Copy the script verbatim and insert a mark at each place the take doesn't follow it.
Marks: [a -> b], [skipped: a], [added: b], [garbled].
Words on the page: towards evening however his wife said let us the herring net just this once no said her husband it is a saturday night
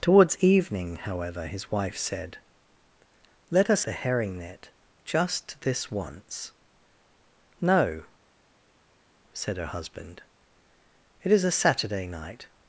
towards evening however his wife said let us the herring net just this once no said her husband it is a saturday night